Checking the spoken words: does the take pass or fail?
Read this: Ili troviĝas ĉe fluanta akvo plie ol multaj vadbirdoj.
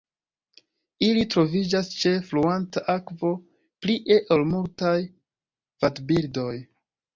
pass